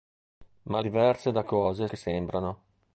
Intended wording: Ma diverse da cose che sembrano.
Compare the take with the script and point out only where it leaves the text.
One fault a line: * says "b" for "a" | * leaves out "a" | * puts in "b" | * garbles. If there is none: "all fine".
all fine